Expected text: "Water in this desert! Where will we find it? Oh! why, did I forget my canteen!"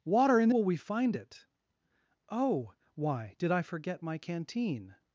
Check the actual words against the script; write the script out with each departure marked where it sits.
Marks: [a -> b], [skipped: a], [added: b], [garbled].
"Water in [skipped: this desert! Where] will we find it? Oh! why, did I forget my canteen!"